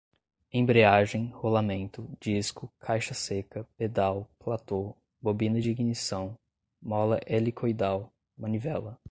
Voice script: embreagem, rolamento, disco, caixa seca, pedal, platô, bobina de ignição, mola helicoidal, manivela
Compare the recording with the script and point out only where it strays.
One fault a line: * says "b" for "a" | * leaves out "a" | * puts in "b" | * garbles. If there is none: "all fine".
all fine